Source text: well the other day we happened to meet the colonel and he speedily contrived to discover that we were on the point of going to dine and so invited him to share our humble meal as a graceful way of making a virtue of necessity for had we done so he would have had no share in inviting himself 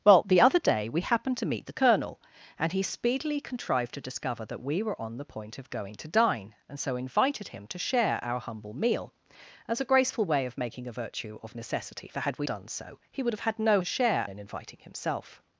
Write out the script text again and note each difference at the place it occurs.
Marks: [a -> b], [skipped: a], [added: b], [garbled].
well the other day we happened to meet the colonel and he speedily contrived to discover that we were on the point of going to dine and so invited him to share our humble meal as a graceful way of making a virtue of necessity for had we done so he would have had no share in inviting himself